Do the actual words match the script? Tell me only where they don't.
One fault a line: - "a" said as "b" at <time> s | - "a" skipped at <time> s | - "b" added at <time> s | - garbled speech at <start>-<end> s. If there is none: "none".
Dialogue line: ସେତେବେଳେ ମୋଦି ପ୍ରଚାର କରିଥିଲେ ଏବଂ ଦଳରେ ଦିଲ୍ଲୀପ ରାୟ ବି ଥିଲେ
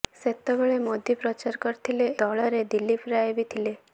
- "ଏବଂ" skipped at 2.1 s